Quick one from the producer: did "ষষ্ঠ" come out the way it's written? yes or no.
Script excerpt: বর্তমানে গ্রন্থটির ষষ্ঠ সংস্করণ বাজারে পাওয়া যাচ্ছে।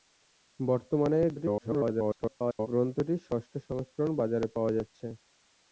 yes